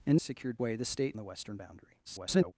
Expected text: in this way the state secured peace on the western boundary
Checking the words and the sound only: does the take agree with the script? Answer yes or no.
no